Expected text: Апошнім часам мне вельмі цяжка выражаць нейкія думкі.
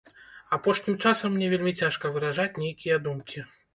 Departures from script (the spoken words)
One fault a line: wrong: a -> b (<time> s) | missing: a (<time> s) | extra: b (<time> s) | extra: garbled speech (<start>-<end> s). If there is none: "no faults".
no faults